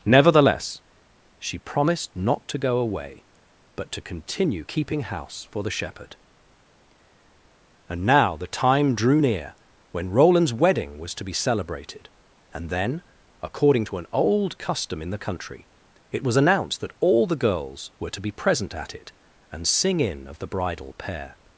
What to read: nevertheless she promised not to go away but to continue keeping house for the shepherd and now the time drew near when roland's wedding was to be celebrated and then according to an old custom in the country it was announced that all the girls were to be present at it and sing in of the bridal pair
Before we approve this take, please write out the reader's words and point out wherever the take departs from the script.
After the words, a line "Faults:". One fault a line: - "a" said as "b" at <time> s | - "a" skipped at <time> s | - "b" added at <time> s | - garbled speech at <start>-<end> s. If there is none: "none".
nevertheless she promised not to go away but to continue keeping house for the shepherd and now the time drew near when roland's wedding was to be celebrated and then according to an old custom in the country it was announced that all the girls were to be present at it and sing in of the bridal pair
Faults:
none